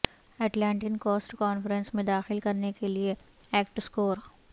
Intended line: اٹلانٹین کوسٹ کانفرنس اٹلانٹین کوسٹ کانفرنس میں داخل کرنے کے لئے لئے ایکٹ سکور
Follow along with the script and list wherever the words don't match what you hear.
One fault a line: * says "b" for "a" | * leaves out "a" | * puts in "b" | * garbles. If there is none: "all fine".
* leaves out "اٹلانٹین کوسٹ کانفرنس"
* leaves out "لئے"